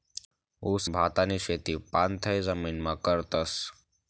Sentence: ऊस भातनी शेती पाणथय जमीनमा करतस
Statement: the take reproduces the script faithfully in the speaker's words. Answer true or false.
true